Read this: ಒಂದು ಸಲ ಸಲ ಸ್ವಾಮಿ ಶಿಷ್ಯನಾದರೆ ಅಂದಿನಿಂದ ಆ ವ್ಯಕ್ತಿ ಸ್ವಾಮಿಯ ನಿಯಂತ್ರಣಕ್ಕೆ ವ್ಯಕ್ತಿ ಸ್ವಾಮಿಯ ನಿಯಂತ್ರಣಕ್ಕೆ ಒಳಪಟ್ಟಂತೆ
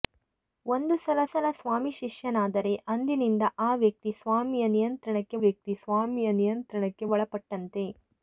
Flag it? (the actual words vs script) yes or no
no